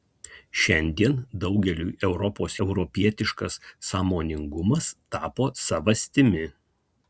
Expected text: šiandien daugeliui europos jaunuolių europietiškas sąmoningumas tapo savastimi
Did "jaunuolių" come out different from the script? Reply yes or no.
yes